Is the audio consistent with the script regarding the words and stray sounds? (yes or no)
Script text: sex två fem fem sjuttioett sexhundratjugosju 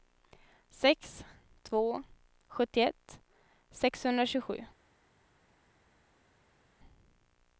no